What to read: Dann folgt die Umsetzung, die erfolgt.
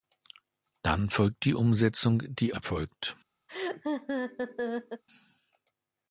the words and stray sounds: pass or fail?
fail